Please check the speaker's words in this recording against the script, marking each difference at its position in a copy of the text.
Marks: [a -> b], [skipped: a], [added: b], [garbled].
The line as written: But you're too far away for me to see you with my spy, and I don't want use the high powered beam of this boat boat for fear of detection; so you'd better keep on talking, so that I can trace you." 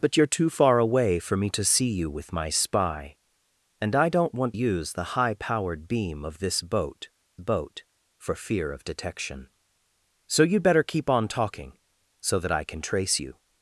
But you're too far away for me to see you with my spy, and I don't want use the high powered beam of this boat boat for fear of detection; so you'd better keep on talking, so that I can trace you."